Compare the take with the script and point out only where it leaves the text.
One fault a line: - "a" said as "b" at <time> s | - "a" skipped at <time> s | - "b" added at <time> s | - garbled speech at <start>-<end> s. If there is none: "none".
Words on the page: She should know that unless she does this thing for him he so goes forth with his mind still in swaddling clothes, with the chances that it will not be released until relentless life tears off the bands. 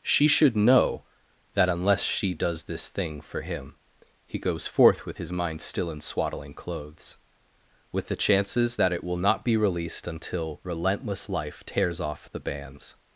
- "so" skipped at 4.4 s